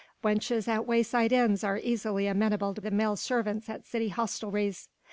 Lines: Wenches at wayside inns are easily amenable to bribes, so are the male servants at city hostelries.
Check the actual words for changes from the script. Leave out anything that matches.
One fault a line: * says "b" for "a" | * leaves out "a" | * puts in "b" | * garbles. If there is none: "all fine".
* leaves out "bribes so are"